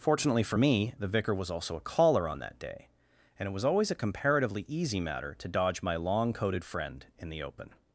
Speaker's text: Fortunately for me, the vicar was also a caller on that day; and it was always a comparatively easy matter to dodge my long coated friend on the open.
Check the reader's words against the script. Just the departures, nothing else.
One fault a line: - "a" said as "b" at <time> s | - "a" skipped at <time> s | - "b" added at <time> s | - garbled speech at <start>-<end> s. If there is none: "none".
- "on" said as "in" at 7.2 s